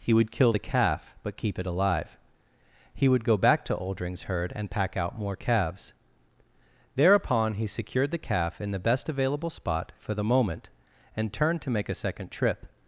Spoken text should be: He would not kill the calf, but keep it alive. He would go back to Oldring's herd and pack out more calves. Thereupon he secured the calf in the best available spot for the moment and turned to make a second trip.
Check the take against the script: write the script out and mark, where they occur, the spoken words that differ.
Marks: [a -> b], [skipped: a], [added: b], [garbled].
He would [skipped: not] kill the calf, but keep it alive. He would go back to Oldring's herd and pack out more calves. Thereupon he secured the calf in the best available spot for the moment and turned to make a second trip.